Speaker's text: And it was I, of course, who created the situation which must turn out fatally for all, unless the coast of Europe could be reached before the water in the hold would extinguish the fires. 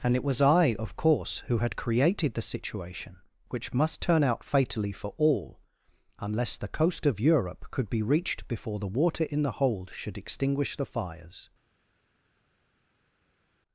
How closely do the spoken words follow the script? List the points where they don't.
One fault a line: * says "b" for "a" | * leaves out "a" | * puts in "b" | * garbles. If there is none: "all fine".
* puts in "had"
* says "should" for "would"